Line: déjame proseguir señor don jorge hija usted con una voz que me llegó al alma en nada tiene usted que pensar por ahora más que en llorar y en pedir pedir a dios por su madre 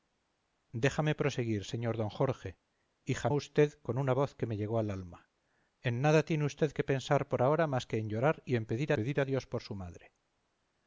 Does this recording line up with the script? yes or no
yes